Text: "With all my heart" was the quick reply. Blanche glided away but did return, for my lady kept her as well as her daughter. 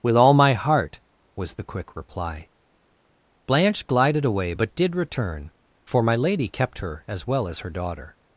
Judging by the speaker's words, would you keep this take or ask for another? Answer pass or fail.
pass